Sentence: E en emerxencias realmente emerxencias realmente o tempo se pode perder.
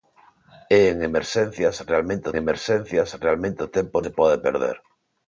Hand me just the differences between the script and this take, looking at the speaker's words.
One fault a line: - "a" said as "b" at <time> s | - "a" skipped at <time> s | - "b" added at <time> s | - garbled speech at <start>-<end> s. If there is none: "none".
none